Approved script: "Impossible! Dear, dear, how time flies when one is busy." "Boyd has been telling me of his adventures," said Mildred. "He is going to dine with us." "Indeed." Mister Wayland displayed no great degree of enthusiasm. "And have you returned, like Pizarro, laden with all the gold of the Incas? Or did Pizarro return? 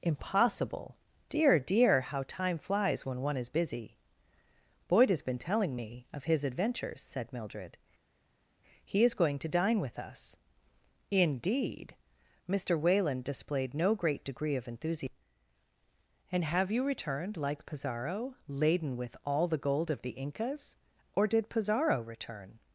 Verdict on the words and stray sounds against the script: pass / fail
pass